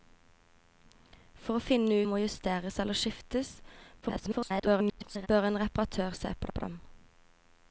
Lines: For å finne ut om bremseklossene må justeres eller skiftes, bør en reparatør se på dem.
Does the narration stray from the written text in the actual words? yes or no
yes